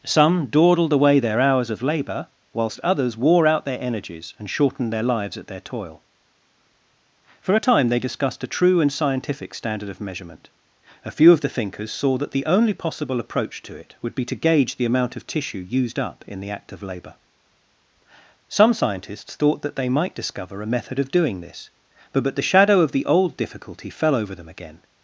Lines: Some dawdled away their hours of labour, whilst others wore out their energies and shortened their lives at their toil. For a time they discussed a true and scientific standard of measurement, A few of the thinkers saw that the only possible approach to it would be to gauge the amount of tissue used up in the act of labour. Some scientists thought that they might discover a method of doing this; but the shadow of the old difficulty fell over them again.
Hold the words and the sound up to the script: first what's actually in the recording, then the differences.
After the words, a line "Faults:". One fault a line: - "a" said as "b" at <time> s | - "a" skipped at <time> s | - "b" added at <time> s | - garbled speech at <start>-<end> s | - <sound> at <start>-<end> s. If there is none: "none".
Some dawdled away their hours of labour, whilst others wore out their energies and shortened their lives at their toil. For a time they discussed a true and scientific standard of measurement, A few of the thinkers saw that the only possible approach to it would be to gauge the amount of tissue used up in the act of labour. Some scientists thought that they might discover a method of doing this; but but the shadow of the old difficulty fell over them again.
Faults:
- "but" added at 22.2 s